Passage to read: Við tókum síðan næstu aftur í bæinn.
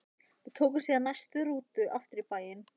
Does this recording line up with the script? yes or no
no